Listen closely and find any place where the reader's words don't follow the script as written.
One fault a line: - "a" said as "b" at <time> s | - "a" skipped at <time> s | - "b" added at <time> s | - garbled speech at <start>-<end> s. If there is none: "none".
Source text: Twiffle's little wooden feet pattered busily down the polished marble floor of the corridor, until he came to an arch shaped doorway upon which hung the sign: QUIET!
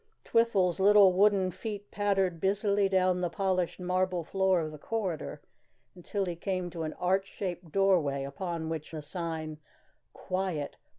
- "hung" skipped at 8.9 s